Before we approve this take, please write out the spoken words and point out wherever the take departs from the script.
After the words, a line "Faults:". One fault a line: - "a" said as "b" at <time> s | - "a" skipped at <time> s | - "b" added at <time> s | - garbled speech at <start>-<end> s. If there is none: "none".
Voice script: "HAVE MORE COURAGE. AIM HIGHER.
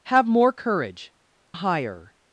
"HAVE MORE COURAGE. HIGHER.
Faults:
- "AIM" skipped at 1.1 s